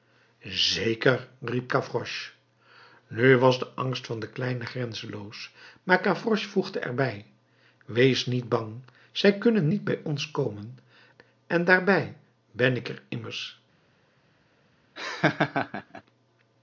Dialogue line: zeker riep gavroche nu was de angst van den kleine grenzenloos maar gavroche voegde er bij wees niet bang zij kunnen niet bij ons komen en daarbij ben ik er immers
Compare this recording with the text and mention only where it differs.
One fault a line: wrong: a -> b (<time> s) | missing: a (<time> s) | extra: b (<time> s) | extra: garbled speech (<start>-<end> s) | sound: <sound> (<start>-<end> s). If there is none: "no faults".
sound: laugh (15.0-16.0 s)